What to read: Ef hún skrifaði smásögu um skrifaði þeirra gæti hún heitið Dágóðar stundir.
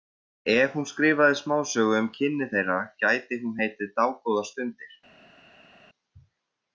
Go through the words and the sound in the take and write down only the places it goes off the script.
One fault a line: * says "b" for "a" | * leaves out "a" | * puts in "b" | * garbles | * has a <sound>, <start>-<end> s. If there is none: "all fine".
* says "kynni" for "skrifaði"